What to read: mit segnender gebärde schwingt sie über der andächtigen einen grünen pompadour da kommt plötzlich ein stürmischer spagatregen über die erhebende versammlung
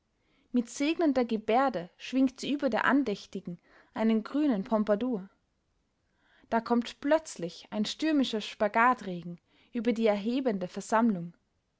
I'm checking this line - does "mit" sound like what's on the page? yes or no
yes